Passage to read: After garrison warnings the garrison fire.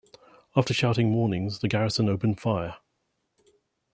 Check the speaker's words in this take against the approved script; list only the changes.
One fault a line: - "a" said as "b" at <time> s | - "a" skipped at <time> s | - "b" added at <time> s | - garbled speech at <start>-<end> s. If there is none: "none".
- "garrison" said as "shouting" at 0.7 s
- "opened" added at 2.1 s